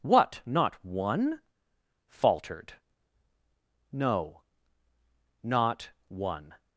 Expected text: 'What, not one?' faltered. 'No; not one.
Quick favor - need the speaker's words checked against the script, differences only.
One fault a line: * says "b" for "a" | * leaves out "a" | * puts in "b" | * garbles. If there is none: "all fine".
all fine